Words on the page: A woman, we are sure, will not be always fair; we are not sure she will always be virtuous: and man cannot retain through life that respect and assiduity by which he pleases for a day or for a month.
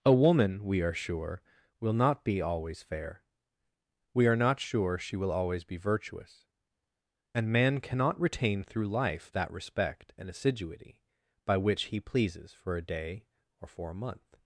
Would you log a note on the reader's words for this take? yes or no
no